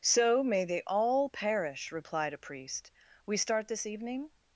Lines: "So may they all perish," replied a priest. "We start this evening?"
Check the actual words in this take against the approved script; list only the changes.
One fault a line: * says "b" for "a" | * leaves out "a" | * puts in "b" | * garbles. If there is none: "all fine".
all fine